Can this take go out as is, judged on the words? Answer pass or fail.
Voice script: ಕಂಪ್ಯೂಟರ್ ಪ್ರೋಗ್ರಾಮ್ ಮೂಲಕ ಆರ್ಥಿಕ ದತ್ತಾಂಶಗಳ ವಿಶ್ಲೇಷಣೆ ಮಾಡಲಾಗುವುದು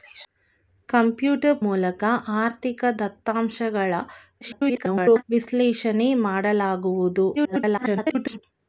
fail